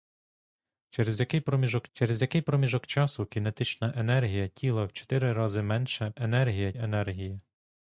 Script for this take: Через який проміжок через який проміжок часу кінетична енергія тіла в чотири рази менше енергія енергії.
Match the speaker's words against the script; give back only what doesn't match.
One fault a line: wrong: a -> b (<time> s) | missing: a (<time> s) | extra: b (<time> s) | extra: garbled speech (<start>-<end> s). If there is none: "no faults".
no faults